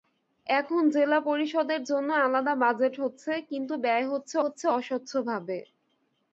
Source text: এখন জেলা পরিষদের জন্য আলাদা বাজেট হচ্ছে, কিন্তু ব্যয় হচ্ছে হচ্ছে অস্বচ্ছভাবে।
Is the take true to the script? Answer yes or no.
yes